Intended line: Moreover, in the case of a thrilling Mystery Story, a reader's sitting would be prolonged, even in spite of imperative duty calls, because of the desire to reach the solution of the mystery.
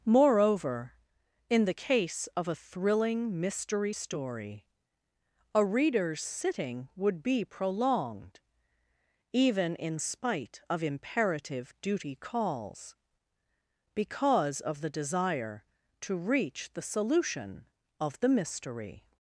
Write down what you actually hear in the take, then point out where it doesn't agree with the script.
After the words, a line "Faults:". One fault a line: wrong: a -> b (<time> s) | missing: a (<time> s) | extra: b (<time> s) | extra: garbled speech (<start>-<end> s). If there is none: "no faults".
Moreover, in the case of a thrilling Mystery Story, a reader's sitting would be prolonged, even in spite of imperative duty calls, because of the desire to reach the solution of the mystery.
Faults:
no faults